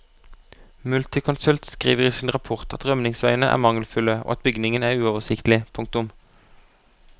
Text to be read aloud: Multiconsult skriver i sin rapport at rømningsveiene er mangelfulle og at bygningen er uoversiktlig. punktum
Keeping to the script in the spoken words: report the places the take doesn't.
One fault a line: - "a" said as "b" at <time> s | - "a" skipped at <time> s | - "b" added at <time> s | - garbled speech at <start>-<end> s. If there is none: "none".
none